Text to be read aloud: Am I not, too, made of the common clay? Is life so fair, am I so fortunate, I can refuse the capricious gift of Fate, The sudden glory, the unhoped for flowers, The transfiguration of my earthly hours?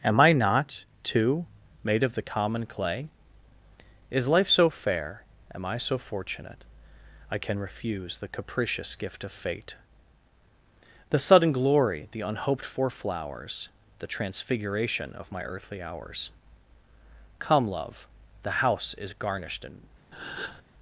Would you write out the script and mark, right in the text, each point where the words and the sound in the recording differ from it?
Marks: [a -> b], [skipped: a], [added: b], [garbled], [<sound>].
Am I not, too, made of the common clay? Is life so fair, am I so fortunate, I can refuse the capricious gift of Fate, The sudden glory, the unhoped for flowers, The transfiguration of my earthly hours? [added: Come Love the house is garnished and] [breath]